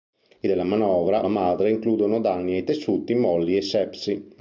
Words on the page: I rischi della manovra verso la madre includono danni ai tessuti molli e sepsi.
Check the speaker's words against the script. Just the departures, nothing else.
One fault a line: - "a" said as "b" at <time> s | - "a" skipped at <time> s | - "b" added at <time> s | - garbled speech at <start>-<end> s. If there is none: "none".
- "rischi" skipped at 0.5 s
- "verso" skipped at 1.2 s